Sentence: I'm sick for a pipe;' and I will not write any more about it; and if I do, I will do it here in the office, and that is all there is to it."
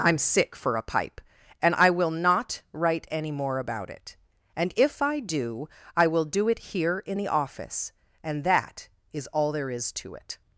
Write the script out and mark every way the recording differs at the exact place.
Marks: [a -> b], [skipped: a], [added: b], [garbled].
I'm sick for a pipe;' and I will not write any more about it; and if I do, I will do it here in the office, and that is all there is to it."